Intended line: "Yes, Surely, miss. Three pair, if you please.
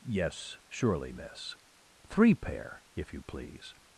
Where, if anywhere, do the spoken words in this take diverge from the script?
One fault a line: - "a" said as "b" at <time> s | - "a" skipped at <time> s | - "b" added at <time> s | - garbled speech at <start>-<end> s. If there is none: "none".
none